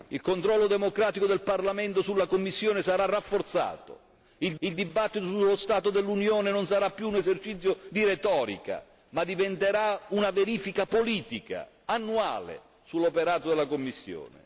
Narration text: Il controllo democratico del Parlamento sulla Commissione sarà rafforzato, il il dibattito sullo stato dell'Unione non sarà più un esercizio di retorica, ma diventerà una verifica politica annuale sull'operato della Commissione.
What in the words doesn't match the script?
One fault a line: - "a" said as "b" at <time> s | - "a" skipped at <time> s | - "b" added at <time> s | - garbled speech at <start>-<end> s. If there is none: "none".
none